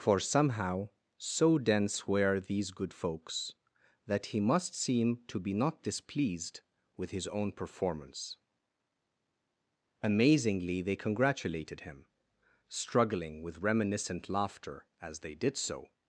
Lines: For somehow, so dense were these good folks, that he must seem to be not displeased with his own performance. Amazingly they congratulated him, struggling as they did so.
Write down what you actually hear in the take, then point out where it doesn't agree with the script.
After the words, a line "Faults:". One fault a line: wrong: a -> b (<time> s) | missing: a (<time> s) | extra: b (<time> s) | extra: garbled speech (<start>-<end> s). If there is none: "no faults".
For somehow, so dense were these good folks, that he must seem to be not displeased with his own performance. Amazingly they congratulated him, struggling with reminiscent laughter as they did so.
Faults:
extra: with reminiscent laughter (13.4 s)